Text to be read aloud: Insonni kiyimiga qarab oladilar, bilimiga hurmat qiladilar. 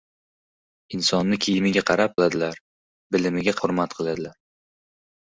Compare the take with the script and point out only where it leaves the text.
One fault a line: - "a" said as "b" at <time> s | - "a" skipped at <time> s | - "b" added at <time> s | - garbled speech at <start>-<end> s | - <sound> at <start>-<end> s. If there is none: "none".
none